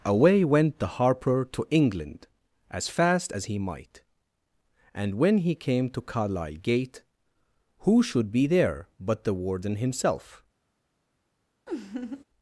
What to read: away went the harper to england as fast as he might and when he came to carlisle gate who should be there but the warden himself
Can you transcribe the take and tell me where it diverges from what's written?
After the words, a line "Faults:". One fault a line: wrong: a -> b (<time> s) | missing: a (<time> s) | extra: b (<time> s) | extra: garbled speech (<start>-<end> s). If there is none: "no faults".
away went the harper to england as fast as he might and when he came to carlisle gate who should be there but the warden himself
Faults:
no faults